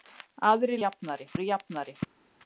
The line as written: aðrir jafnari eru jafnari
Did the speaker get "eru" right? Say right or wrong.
right